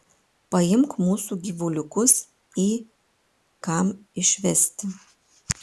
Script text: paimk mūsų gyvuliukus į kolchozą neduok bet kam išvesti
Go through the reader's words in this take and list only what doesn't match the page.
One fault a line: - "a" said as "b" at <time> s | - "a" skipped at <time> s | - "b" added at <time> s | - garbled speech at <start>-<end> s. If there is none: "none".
- "kolchozą neduok bet" skipped at 2.7 s